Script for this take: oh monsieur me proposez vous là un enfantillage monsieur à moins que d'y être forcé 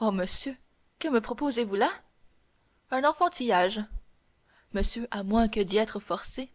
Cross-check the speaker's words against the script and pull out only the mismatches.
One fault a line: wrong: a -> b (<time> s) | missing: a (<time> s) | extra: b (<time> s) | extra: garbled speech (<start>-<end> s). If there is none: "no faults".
extra: que (1.0 s)